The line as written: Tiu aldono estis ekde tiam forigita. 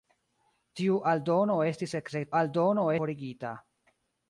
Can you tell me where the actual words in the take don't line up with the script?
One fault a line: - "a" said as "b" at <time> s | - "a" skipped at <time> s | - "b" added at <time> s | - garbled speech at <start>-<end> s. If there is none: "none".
- "tiam" said as "aldono" at 2.4 s